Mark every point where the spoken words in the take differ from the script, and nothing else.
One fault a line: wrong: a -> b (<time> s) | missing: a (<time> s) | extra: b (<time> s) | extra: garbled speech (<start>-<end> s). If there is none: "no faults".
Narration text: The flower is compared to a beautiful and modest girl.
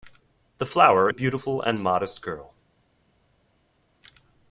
missing: is compared to (1.1 s)